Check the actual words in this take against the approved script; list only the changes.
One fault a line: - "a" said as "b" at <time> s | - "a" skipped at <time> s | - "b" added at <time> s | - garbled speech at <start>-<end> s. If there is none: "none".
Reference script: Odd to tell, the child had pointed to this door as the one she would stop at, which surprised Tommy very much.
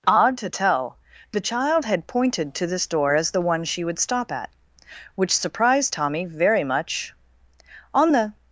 - "On the" added at 7.9 s